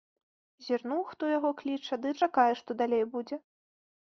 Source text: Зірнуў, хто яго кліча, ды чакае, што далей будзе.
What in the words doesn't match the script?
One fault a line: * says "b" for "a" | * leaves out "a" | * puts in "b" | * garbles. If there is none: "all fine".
all fine